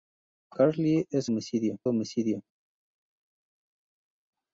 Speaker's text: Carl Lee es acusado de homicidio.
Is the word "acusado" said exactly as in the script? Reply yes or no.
no